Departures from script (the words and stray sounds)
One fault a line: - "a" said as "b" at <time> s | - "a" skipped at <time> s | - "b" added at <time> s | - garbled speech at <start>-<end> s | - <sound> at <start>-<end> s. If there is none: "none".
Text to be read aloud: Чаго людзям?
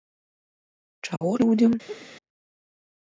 - dropout at 1.2-1.2 s
- laugh at 1.9-2.1 s